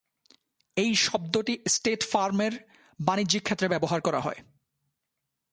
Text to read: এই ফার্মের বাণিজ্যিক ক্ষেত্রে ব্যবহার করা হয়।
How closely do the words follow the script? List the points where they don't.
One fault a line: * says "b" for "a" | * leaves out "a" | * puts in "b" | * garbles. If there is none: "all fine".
* puts in "শব্দটি স্টেট"